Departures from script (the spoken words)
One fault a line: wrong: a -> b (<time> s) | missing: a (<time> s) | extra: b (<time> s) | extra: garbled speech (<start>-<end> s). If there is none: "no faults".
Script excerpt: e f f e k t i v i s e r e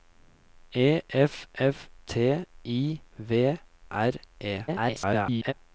missing: e k (1.9 s)
missing: i s e (3.6 s)
extra: garbled speech (4.7-5.5 s)